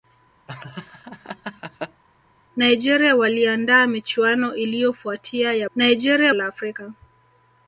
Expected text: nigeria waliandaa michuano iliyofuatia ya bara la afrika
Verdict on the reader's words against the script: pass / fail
fail